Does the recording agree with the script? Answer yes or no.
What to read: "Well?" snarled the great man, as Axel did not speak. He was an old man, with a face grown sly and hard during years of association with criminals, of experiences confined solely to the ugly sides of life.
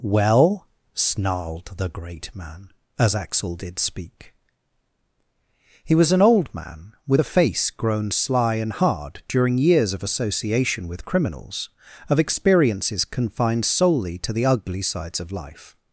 no